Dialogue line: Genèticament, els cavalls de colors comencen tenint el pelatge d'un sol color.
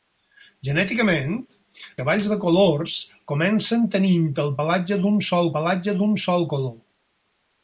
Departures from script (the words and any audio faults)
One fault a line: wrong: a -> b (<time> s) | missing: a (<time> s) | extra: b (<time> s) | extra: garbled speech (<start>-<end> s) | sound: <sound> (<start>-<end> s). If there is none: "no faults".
missing: els (1.4 s)
extra: pelatge d'un sol (5.6 s)